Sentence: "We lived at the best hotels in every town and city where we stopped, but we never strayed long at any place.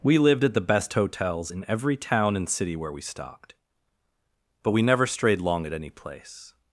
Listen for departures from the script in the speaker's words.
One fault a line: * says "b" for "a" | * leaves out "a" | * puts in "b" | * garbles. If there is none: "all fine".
all fine